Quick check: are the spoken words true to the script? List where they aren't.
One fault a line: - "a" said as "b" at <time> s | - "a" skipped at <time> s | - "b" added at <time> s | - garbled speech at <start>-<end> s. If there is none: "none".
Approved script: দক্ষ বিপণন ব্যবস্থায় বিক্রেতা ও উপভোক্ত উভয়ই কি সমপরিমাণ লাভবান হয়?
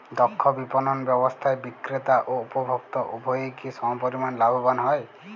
none